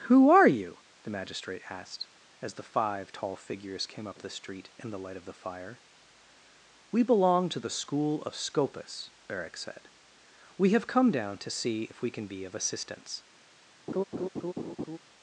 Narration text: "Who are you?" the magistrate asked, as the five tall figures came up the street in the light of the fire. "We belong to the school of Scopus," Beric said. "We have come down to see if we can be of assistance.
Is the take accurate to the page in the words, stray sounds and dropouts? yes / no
no